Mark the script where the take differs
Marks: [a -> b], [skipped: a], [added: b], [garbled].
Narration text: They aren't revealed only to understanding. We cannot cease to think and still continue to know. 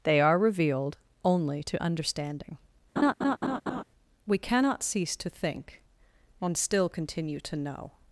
They [aren't -> are] revealed only to understanding. We cannot cease to think and still continue to know.